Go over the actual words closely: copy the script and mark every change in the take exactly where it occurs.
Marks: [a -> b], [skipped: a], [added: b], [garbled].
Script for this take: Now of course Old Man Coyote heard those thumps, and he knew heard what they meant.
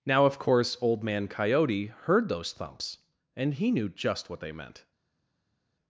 Now of course Old Man Coyote heard those thumps, and he knew [heard -> just] what they meant.